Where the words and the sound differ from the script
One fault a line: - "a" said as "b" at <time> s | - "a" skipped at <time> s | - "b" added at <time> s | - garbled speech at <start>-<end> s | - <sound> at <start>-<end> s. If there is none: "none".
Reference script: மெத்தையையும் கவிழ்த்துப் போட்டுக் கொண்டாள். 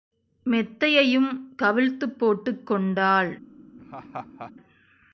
- laugh at 3.8-4.5 s